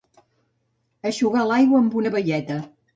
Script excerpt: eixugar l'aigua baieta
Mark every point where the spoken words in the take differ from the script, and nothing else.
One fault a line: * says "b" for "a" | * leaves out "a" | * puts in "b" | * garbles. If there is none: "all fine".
* puts in "amb una"